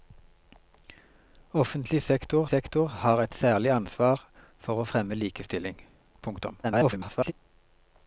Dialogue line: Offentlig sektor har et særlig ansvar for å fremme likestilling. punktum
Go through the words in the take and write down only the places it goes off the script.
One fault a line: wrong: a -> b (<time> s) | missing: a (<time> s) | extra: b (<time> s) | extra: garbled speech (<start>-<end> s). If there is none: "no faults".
extra: sektor (2.5 s)
extra: garbled speech (6.6-7.3 s)